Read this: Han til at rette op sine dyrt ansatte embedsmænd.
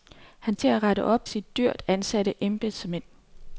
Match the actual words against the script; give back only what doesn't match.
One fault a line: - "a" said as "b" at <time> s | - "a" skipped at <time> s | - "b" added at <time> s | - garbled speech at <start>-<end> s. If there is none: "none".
none